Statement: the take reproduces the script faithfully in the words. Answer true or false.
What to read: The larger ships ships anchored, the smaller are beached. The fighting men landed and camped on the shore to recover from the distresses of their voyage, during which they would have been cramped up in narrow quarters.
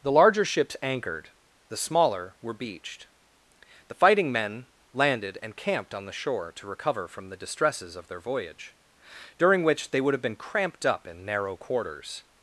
false